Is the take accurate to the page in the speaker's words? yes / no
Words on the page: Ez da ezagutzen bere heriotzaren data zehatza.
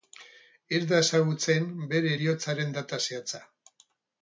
yes